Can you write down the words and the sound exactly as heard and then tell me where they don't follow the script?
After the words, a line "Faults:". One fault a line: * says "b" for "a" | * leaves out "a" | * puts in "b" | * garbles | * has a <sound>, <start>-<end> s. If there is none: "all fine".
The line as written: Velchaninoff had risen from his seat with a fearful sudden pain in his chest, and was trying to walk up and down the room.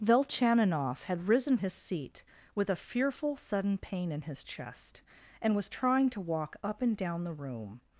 Velchaninoff had risen his seat with a fearful sudden pain in his chest, and was trying to walk up and down the room.
Faults:
* leaves out "from"